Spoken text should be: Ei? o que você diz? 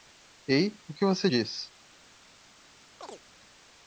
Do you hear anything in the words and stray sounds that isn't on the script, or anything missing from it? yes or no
yes